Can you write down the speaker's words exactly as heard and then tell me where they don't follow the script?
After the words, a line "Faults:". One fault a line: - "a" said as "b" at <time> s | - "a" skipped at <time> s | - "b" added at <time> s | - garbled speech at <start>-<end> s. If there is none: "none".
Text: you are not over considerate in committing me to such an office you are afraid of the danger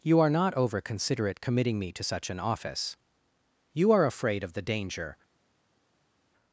you are not over considerate committing me to such an office you are afraid of the danger
Faults:
- "in" skipped at 1.4 s